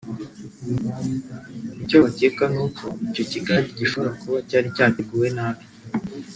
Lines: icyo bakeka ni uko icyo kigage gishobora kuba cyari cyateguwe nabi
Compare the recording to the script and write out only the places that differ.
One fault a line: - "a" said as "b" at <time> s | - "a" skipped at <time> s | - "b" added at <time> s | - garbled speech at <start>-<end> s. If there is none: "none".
none